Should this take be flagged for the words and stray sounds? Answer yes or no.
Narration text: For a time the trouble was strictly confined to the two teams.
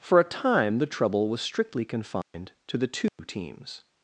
yes